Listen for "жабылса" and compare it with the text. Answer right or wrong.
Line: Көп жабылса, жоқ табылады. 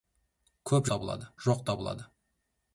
wrong